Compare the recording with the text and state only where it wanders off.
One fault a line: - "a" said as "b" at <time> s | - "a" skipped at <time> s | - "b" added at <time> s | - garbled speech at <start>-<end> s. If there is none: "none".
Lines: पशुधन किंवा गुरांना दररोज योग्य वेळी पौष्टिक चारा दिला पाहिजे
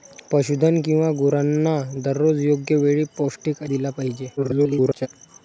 - "चारा" skipped at 3.6 s
- garbled speech at 4.4-5.1 s